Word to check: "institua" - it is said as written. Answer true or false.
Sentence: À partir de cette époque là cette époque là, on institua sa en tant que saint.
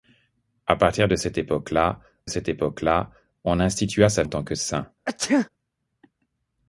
true